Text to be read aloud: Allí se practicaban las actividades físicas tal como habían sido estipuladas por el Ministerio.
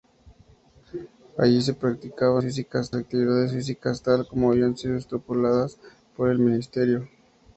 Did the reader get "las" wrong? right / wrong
wrong